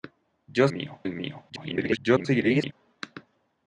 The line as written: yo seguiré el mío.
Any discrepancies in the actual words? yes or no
yes